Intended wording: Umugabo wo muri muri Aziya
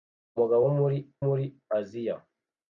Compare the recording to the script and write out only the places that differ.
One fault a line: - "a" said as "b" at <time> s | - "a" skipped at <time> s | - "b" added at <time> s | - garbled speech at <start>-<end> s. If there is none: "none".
none